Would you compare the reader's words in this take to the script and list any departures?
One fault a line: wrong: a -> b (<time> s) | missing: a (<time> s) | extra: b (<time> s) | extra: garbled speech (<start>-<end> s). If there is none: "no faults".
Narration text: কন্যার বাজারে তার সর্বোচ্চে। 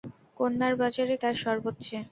no faults